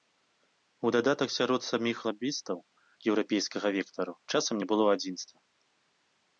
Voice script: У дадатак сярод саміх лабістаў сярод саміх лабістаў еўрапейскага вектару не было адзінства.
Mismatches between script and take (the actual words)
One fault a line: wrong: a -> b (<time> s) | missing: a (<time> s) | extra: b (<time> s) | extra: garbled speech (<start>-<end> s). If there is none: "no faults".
missing: сярод саміх лабістаў (2.6 s)
extra: часам (4.3 s)